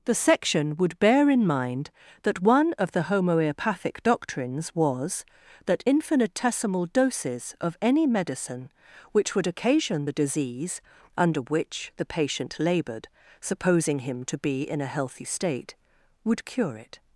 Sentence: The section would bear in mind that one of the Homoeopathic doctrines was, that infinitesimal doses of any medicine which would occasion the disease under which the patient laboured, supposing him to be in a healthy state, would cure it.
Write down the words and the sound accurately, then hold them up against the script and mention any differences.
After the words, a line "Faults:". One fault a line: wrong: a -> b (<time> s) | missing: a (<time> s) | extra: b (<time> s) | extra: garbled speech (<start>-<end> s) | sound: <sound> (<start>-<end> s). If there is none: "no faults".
The section would bear in mind that one of the Homoeopathic doctrines was, that infinitesimal doses of any medicine which would occasion the disease under which the patient laboured, supposing him to be in a healthy state, would cure it.
Faults:
no faults